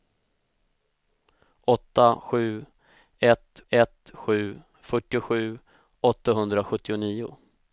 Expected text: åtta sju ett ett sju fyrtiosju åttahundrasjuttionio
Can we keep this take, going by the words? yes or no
yes